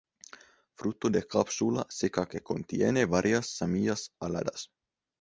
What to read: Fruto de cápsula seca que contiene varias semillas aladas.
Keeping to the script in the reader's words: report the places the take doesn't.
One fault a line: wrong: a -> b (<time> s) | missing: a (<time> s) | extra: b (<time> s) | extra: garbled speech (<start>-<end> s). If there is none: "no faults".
no faults